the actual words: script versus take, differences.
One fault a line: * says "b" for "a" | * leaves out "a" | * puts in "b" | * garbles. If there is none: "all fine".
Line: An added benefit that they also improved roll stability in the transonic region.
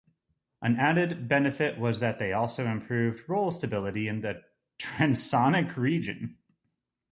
* puts in "was"